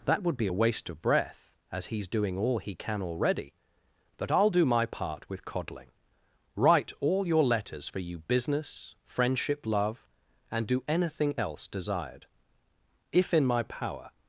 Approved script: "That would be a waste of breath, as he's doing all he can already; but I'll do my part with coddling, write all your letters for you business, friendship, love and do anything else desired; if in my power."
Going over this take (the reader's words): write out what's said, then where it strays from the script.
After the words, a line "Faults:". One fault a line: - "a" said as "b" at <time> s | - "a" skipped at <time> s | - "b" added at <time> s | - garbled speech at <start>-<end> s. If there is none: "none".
"That would be a waste of breath, as he's doing all he can already; but I'll do my part with coddling, write all your letters for you business, friendship, love and do anything else desired; if in my power."
Faults:
none